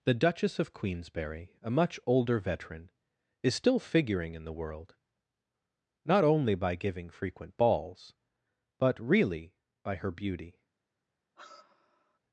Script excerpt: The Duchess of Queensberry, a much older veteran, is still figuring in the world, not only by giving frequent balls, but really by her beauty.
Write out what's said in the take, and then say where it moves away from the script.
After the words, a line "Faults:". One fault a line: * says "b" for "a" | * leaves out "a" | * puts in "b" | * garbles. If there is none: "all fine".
The Duchess of Queensberry, a much older veteran, is still figuring in the world, not only by giving frequent balls, but really by her beauty.
Faults:
all fine